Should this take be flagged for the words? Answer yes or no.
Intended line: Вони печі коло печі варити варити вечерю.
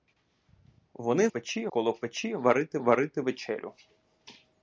no